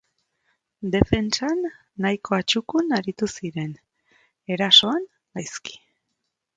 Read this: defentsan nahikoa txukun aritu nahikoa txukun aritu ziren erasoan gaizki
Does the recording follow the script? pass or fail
fail